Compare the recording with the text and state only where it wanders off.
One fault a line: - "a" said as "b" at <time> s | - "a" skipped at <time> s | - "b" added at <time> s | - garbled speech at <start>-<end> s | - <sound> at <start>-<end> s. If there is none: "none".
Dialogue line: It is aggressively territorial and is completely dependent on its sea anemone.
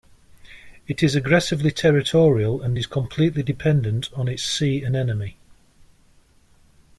none